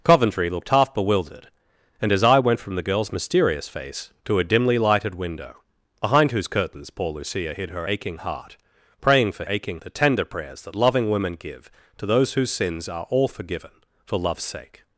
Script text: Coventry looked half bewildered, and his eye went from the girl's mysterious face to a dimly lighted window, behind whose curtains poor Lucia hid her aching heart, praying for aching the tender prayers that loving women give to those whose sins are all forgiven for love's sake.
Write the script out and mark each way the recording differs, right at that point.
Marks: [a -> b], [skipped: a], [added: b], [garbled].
Coventry looked half bewildered, and his eye went from the girl's mysterious face to a dimly lighted window, behind whose curtains poor Lucia hid her aching heart, praying for aching the tender prayers that loving women give to those whose sins are all forgiven for love's sake.